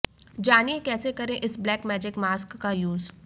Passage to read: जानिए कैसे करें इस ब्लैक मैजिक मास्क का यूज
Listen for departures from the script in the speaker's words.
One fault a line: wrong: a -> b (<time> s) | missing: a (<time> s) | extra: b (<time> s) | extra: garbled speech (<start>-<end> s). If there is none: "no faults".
no faults